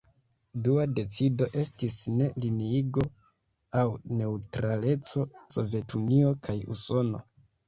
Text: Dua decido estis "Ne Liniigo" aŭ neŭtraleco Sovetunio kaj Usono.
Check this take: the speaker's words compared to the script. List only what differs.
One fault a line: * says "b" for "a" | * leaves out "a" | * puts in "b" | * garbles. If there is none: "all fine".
all fine